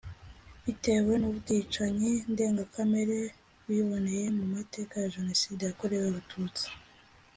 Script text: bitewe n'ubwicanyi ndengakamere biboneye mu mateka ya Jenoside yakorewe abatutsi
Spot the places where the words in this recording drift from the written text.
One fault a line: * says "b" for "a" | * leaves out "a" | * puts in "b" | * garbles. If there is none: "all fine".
all fine